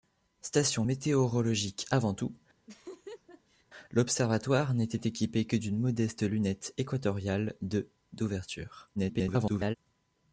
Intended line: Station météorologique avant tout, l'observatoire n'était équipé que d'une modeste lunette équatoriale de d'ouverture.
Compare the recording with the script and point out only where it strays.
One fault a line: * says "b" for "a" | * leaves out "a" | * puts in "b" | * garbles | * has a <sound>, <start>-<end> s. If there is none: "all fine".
* has a laugh, 2.7-3.7 s
* garbles